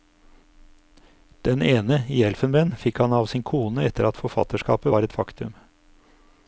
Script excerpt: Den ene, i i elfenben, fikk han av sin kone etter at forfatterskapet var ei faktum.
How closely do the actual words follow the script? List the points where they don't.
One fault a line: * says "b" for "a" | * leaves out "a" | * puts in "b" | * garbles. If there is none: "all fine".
* leaves out "i"
* says "et" for "ei"